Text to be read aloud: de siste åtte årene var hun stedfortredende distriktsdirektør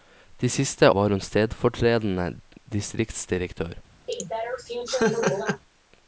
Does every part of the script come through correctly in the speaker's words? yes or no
no